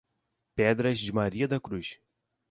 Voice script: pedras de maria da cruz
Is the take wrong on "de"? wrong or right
right